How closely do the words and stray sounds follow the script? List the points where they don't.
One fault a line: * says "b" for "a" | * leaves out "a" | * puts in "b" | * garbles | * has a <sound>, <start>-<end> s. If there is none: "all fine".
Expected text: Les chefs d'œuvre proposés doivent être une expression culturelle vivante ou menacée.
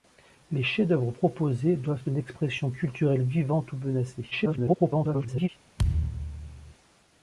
* leaves out "être"
* garbles
* has a thud, 5.8-6.7 s